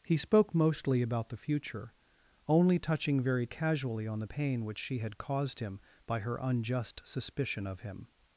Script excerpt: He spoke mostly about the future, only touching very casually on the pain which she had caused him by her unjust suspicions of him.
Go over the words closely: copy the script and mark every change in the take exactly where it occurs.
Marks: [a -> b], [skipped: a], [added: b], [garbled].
He spoke mostly about the future, only touching very casually on the pain which she had caused him by her unjust [suspicions -> suspicion] of him.